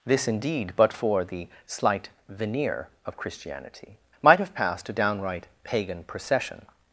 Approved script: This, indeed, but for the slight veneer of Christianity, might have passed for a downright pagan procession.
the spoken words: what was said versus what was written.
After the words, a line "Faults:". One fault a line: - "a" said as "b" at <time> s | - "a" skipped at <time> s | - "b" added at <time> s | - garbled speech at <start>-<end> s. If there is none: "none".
This, indeed, but for the slight veneer of Christianity, might have passed a downright pagan procession.
Faults:
- "for" skipped at 4.9 s